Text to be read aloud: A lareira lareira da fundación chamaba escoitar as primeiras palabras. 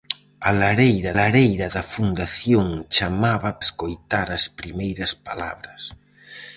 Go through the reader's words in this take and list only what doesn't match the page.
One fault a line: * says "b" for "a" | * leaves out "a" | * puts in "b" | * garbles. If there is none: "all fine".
all fine